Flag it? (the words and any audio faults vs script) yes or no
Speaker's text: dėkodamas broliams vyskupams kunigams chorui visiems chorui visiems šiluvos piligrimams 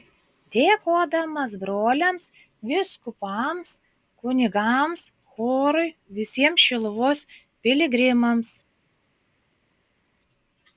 yes